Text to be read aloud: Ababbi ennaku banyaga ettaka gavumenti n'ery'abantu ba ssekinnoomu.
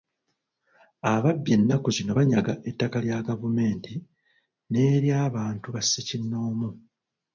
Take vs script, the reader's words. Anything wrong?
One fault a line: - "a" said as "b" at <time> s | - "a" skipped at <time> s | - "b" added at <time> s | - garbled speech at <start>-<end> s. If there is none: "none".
- "zino" added at 1.9 s
- "lya" added at 3.0 s